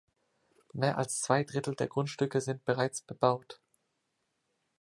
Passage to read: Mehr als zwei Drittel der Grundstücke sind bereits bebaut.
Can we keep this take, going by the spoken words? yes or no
yes